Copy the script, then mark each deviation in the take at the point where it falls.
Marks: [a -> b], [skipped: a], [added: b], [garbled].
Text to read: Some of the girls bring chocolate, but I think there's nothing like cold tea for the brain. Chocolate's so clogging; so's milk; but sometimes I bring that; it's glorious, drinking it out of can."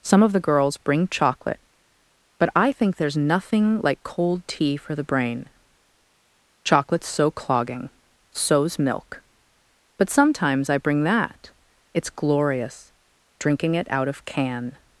Some of the girls bring chocolate, but I think there's nothing like cold tea for the brain. Chocolate's so clogging; so's milk; but sometimes I bring that; it's glorious, drinking it out of can."